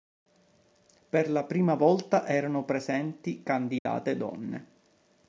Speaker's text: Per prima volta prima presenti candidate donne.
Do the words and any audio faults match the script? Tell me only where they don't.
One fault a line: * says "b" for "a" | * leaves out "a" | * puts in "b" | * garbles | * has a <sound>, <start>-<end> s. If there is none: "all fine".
* puts in "la"
* says "erano" for "prima"
* has a dropout, 3.8-3.9 s